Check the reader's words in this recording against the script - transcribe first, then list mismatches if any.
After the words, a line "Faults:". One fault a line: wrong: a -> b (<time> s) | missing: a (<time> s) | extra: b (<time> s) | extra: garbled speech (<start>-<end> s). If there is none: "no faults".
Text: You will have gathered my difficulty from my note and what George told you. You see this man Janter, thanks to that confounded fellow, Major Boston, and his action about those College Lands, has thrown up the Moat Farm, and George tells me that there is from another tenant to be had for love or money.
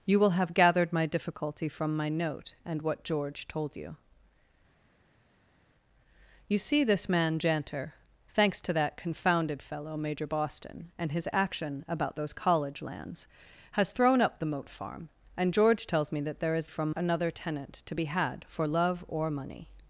You will have gathered my difficulty from my note and what George told you. You see this man Janter, thanks to that confounded fellow, Major Boston, and his action about those College Lands, has thrown up the Moat Farm, and George tells me that there is from another tenant to be had for love or money.
Faults:
no faults